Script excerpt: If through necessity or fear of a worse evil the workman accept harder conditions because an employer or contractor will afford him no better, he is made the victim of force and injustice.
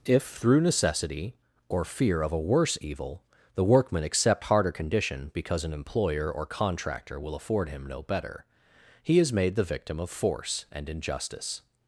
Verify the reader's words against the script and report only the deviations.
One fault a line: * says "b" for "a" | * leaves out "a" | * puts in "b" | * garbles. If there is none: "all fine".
* says "condition" for "conditions"